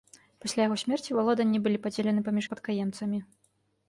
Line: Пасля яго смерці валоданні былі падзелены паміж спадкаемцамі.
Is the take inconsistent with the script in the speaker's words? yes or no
no